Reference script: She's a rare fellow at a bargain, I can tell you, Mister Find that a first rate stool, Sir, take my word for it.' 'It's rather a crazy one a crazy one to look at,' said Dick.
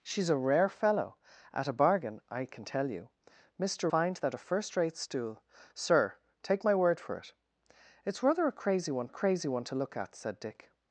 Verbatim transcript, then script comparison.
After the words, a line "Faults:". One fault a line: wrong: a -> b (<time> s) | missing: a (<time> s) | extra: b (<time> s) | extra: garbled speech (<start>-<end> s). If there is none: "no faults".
She's a rare fellow at a bargain, I can tell you, Mister Find that a first rate stool, Sir, take my word for it.' 'It's rather a crazy one a crazy one to look at,' said Dick.
Faults:
no faults